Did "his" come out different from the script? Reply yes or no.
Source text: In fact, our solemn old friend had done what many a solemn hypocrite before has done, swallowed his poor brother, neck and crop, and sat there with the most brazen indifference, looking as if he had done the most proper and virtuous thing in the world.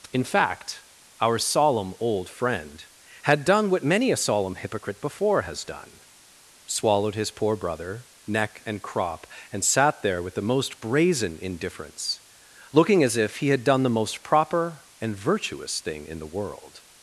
no